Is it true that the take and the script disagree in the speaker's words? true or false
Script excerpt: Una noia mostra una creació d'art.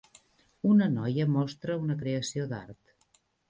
false